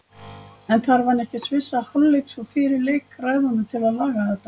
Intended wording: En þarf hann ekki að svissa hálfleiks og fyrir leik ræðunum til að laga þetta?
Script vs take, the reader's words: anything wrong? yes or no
no